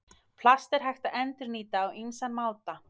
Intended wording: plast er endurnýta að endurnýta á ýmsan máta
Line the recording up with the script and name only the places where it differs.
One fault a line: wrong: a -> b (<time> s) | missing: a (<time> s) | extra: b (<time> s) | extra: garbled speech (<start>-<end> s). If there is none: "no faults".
wrong: endurnýta -> hægt (0.9 s)